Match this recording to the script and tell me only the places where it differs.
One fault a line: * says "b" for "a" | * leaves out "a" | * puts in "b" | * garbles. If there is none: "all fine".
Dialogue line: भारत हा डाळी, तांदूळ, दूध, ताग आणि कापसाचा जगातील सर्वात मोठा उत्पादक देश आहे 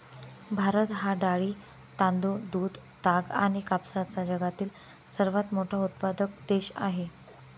all fine